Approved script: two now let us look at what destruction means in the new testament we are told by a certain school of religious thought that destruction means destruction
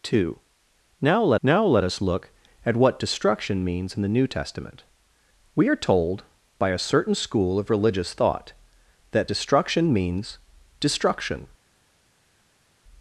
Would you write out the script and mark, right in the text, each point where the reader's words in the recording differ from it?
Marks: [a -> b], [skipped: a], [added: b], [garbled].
two now let [added: now let] us look at what destruction means in the new testament we are told by a certain school of religious thought that destruction means destruction